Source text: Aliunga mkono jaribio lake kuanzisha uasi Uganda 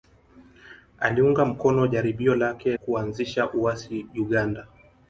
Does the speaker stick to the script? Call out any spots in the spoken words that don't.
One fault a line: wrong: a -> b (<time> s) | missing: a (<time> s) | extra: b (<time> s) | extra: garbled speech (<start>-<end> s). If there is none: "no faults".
no faults